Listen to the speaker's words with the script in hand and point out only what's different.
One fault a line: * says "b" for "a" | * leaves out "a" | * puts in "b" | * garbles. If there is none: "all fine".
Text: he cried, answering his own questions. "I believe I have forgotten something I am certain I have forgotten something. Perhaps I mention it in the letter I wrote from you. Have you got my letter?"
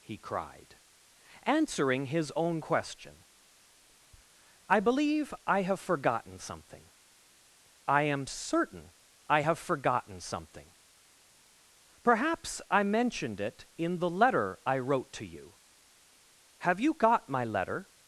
* says "question" for "questions"
* says "mentioned" for "mention"
* says "to" for "from"